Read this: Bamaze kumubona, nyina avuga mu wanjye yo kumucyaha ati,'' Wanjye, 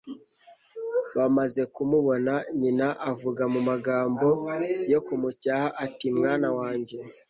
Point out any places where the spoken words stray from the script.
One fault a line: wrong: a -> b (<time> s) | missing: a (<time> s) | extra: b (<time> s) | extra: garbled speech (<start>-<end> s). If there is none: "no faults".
wrong: wanjye -> magambo (3.7 s)
extra: Mwana (6.2 s)